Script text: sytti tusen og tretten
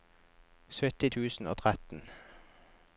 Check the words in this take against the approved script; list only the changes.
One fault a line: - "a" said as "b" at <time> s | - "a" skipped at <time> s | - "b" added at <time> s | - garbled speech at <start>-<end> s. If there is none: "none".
none